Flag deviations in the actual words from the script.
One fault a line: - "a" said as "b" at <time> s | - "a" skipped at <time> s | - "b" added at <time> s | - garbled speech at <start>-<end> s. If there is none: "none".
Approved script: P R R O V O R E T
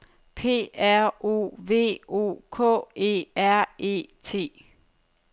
- "R" skipped at 1.1 s
- "K E" added at 2.5 s